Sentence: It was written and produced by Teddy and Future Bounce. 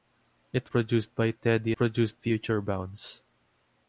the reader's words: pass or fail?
fail